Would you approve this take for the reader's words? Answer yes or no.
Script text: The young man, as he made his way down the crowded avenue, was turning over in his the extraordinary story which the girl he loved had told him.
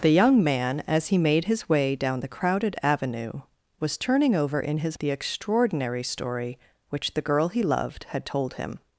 yes